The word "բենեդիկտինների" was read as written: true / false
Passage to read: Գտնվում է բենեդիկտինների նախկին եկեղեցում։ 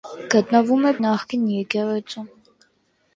false